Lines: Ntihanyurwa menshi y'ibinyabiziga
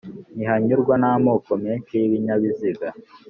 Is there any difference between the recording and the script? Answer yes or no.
yes